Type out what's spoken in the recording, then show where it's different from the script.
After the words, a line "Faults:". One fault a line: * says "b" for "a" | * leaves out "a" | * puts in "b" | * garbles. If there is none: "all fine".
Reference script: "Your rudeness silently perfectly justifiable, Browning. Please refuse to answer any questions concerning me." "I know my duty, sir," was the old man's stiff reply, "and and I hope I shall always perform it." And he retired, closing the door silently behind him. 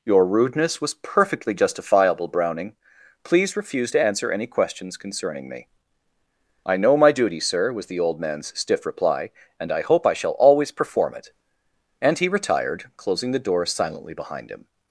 "Your rudeness was perfectly justifiable, Browning. Please refuse to answer any questions concerning me." "I know my duty, sir," was the old man's stiff reply, "and I hope I shall always perform it." And he retired, closing the door silently behind him.
Faults:
* says "was" for "silently"
* leaves out "and"